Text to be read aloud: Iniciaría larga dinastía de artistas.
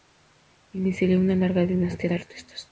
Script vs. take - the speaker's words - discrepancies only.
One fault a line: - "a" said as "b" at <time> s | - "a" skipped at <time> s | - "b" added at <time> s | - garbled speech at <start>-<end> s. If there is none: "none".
- "una" added at 1.2 s